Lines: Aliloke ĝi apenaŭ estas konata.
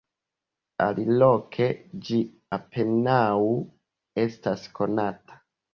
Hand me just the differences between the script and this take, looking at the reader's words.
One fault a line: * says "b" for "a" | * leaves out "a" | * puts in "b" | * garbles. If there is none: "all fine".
all fine